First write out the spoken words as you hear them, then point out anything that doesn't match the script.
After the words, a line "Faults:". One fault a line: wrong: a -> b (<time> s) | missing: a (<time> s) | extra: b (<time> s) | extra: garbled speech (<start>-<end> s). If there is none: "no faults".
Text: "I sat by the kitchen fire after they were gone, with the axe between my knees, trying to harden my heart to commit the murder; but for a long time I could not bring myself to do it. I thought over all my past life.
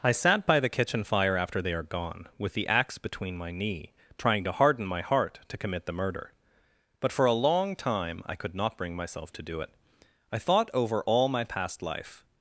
"I sat by the kitchen fire after they are gone, with the axe between my knee, trying to harden my heart to commit the murder; but for a long time I could not bring myself to do it. I thought over all my past life.
Faults:
wrong: were -> are (1.7 s)
wrong: knees -> knee (3.5 s)